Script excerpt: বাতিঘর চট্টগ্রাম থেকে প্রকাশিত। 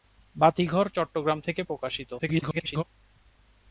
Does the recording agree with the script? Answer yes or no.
no